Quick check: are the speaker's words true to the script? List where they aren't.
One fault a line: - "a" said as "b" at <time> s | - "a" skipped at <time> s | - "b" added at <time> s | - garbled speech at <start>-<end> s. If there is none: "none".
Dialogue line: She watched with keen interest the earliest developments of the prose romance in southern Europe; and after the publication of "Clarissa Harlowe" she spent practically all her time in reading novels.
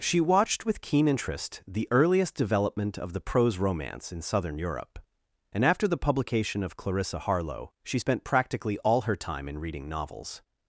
- "developments" said as "development" at 2.3 s